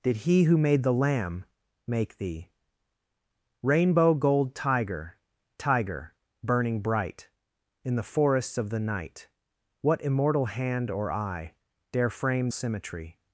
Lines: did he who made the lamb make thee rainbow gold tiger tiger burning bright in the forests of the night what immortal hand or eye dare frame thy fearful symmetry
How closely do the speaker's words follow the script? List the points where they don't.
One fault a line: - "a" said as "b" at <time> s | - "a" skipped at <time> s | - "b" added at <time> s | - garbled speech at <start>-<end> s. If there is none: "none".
- "thy fearful" skipped at 12.5 s